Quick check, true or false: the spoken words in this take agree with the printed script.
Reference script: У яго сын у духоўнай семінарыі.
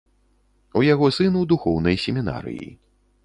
true